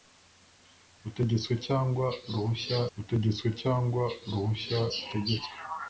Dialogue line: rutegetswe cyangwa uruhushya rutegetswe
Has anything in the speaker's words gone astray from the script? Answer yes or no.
yes